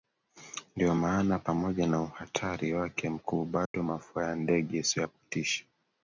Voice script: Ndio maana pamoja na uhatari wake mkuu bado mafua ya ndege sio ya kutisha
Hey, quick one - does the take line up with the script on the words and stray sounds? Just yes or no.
no